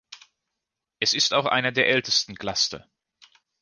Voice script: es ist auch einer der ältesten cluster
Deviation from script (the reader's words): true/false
false